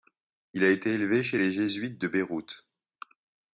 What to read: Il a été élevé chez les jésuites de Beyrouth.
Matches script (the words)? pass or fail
pass